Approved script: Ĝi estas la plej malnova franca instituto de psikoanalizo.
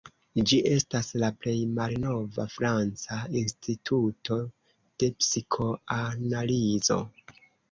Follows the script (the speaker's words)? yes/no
yes